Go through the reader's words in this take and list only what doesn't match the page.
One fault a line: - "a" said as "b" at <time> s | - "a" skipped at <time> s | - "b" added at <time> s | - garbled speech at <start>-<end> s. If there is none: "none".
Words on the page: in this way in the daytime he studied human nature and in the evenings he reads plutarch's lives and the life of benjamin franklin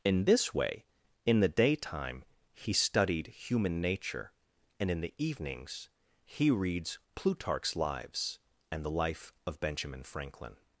none